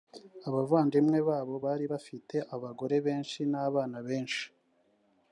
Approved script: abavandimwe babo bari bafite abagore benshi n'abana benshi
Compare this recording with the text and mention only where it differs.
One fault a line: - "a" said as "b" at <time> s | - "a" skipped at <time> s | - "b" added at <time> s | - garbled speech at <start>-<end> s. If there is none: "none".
none